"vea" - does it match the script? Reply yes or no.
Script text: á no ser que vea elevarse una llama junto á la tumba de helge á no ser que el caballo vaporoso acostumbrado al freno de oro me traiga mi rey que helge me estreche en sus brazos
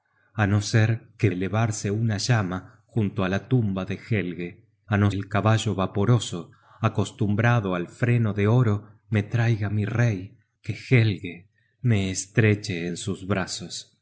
no